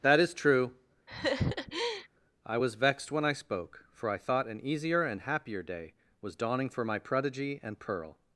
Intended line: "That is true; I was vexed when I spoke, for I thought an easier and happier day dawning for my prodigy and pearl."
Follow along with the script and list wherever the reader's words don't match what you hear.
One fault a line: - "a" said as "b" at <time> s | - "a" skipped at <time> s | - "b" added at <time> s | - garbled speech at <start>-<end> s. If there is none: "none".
- "was" added at 6.2 s